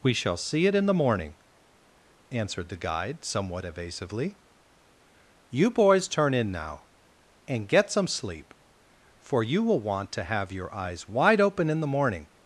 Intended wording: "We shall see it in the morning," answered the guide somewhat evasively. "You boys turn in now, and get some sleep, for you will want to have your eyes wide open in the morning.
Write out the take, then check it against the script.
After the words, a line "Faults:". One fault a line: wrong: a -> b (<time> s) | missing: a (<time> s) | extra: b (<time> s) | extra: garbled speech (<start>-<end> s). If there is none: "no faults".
"We shall see it in the morning," answered the guide somewhat evasively. "You boys turn in now, and get some sleep, for you will want to have your eyes wide open in the morning.
Faults:
no faults